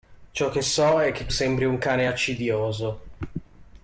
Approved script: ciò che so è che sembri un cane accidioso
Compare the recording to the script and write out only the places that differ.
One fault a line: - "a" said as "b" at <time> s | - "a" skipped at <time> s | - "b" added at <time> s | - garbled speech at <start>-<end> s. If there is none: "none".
none